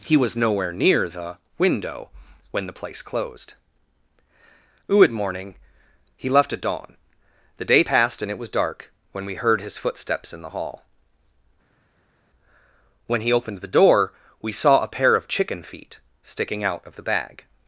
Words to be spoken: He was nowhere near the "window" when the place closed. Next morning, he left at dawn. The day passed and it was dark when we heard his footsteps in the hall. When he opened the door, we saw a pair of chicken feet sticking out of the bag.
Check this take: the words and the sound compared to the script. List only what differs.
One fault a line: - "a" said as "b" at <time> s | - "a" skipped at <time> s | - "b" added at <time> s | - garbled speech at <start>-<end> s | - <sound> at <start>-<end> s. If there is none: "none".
- "Next" said as "Uid" at 4.9 s